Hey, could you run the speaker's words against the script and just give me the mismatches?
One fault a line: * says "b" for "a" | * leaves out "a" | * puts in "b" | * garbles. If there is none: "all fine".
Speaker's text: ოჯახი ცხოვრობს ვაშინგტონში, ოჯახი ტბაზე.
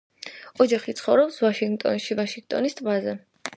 * says "ვაშინგტონის" for "ოჯახი"